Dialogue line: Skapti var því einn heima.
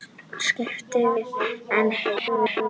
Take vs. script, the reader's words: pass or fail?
fail